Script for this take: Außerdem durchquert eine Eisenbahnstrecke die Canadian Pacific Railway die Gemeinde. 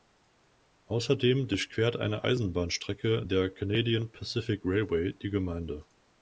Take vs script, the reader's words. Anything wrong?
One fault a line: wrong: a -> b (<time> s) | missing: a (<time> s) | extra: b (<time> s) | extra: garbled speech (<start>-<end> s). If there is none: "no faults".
wrong: die -> der (3.2 s)